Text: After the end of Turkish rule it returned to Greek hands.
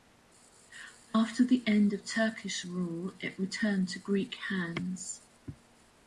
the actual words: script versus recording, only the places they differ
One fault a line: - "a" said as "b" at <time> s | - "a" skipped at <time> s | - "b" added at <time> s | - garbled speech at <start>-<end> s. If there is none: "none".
none